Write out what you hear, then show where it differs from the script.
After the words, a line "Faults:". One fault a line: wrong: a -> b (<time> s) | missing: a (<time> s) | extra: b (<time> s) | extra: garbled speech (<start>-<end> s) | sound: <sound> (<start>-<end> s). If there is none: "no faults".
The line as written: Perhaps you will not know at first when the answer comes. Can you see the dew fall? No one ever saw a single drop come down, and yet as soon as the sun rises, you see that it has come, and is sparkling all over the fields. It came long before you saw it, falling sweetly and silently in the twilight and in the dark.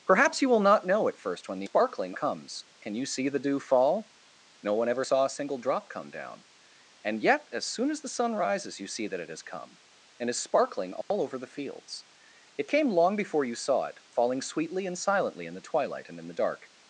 Perhaps you will not know at first when the sparkling comes. Can you see the dew fall? No one ever saw a single drop come down, and yet as soon as the sun rises, you see that it has come, and is sparkling all over the fields. It came long before you saw it, falling sweetly and silently in the twilight and in the dark.
Faults:
wrong: answer -> sparkling (1.6 s)
sound: dropout (11.0-11.1 s)